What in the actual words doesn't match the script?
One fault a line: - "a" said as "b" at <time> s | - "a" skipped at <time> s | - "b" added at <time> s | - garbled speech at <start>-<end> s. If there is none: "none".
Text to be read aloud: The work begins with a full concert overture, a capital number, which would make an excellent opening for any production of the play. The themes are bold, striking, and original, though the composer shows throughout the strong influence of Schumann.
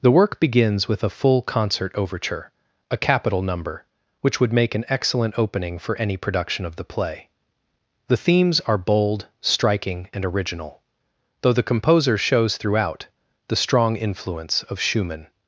none